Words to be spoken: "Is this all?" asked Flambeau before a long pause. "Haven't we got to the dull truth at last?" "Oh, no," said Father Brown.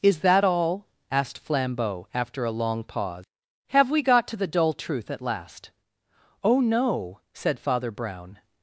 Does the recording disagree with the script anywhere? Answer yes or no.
yes